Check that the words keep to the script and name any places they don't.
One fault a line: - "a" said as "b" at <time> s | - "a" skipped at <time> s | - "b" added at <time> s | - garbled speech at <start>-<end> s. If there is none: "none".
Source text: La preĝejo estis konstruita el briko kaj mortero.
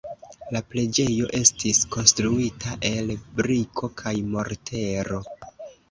none